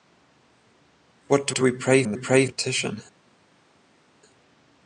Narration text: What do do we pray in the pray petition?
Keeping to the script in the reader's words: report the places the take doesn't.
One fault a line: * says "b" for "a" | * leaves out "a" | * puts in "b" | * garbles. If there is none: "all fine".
all fine